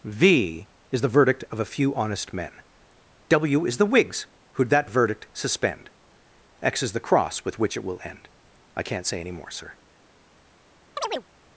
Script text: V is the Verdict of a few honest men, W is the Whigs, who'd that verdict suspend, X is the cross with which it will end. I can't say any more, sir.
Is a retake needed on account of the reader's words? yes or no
no